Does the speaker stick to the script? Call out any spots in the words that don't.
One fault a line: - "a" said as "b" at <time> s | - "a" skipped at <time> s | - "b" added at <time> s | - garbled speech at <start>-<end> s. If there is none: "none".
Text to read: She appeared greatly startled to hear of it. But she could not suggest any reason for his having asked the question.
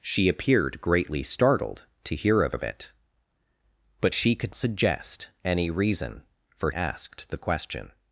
- "of" added at 2.5 s
- "not" skipped at 4.5 s
- "his having" skipped at 6.7 s